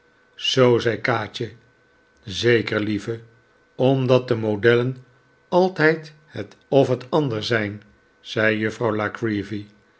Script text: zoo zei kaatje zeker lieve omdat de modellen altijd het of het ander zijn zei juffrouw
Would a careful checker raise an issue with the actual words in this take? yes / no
no